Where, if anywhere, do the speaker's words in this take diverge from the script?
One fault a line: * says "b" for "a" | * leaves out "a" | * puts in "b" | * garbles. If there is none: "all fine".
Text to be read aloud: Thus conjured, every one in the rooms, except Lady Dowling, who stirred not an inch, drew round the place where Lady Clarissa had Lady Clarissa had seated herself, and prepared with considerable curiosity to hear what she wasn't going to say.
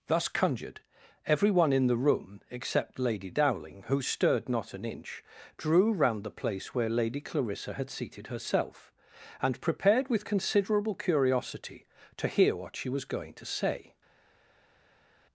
* says "room" for "rooms"
* leaves out "Lady Clarissa had"
* says "was" for "wasn't"